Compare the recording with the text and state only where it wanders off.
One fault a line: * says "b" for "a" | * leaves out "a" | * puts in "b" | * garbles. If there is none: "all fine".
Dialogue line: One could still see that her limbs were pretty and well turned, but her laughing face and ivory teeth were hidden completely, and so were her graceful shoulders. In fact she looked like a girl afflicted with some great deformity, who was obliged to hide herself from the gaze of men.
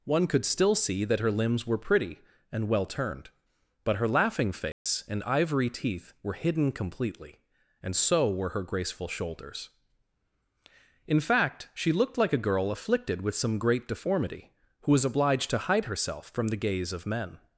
all fine